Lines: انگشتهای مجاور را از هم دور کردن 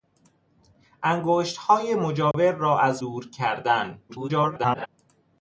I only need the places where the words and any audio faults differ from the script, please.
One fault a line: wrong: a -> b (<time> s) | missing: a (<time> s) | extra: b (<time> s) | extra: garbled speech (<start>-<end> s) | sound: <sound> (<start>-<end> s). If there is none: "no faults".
sound: dropout (2.3-2.3 s)
missing: هم (3.0 s)
extra: garbled speech (4.1-4.9 s)